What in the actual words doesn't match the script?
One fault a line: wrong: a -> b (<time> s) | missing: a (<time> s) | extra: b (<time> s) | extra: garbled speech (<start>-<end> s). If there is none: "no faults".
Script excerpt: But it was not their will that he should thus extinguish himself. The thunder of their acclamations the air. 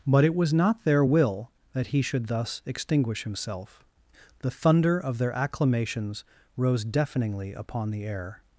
extra: rose deafeningly upon (6.6 s)